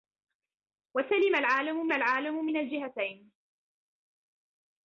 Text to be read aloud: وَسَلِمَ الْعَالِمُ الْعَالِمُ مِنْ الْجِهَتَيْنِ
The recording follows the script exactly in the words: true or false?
true